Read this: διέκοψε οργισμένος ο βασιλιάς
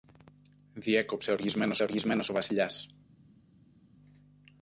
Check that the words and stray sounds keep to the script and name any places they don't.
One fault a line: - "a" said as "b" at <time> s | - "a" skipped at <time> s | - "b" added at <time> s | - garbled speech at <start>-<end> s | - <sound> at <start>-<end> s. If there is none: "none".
- "οργισμένος" added at 1.8 s